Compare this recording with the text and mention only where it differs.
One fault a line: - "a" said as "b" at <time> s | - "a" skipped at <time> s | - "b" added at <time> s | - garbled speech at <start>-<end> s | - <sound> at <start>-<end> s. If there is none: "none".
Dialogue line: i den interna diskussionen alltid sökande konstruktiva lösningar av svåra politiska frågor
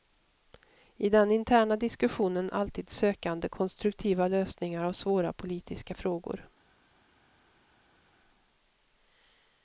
none